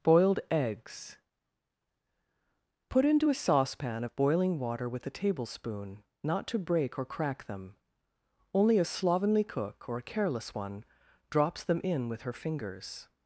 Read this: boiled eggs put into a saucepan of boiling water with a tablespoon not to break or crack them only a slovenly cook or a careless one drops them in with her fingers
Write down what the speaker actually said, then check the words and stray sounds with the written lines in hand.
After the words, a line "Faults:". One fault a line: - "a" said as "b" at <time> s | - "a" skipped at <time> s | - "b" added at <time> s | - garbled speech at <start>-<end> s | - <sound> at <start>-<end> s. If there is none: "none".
boiled eggs put into a saucepan of boiling water with a tablespoon not to break or crack them only a slovenly cook or a careless one drops them in with her fingers
Faults:
none